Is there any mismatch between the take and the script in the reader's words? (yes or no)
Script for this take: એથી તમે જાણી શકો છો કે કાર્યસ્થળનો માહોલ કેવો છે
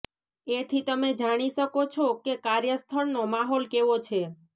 no